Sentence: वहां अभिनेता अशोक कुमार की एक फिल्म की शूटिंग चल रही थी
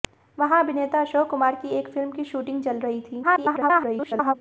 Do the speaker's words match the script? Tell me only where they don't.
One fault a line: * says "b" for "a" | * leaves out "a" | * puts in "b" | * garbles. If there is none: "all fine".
* garbles